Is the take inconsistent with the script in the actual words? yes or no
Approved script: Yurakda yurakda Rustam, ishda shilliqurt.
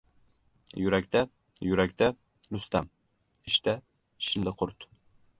no